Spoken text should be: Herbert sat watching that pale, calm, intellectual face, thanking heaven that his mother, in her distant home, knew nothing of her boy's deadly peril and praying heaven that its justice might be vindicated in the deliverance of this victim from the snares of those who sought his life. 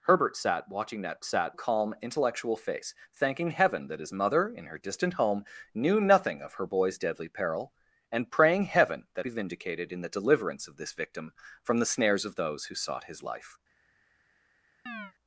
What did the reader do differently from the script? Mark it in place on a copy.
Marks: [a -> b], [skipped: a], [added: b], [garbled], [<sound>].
Herbert sat watching that [pale, -> sat] calm, intellectual face, thanking heaven that his mother, in her distant home, knew nothing of her boy's deadly peril and praying heaven that [skipped: its justice might] be vindicated in the deliverance of this victim from the snares of those who sought his life. [chirp]